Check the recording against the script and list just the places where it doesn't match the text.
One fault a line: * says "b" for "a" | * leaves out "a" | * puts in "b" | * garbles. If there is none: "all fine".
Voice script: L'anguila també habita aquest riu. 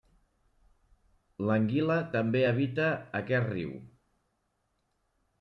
all fine